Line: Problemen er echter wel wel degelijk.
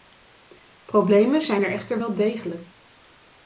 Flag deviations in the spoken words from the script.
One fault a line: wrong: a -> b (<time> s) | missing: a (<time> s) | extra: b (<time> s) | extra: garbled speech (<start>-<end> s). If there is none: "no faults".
extra: zijn (1.4 s)
missing: wel (2.1 s)